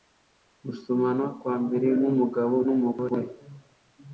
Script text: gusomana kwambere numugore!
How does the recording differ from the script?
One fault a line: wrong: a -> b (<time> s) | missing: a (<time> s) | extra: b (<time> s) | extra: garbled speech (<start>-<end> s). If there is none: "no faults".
extra: nkumugabo (2.0 s)